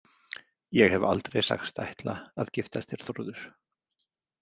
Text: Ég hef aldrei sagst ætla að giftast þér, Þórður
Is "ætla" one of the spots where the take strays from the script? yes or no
no